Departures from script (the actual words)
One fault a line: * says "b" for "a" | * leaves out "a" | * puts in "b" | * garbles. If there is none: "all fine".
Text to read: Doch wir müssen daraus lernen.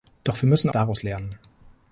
all fine